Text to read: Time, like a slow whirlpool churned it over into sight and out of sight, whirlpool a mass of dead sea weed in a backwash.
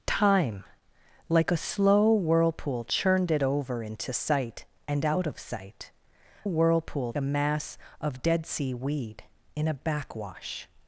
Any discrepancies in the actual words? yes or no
no